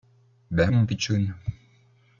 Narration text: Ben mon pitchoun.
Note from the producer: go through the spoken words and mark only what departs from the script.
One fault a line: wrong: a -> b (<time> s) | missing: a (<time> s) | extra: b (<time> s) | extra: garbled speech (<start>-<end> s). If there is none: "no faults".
no faults